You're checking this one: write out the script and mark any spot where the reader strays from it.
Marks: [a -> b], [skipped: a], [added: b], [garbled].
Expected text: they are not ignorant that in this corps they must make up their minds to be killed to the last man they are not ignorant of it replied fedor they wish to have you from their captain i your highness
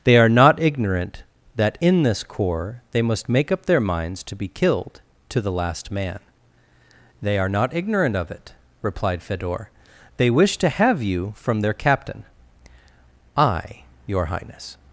they are not ignorant that in this corps they must make up their minds to be killed to the last man they are not ignorant of it replied fedor they wish to have you from their captain i your highness